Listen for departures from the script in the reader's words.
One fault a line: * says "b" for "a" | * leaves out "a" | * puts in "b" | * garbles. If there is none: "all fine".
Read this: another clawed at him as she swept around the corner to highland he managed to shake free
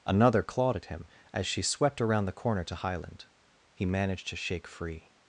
all fine